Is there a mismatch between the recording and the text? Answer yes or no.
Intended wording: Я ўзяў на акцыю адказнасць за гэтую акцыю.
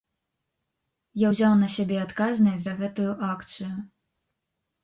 yes